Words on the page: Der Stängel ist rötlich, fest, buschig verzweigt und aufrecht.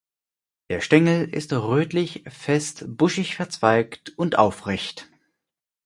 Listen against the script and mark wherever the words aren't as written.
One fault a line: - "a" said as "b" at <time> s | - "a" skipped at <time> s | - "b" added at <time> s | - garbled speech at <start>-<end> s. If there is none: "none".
none